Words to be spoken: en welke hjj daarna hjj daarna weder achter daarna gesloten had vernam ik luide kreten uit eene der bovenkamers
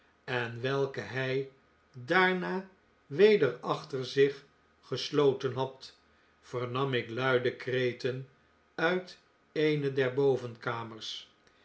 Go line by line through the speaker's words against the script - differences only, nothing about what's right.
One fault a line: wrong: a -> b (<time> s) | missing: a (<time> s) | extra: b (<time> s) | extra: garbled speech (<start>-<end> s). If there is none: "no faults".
missing: hjj daarna (2.7 s)
wrong: daarna -> zich (4.0 s)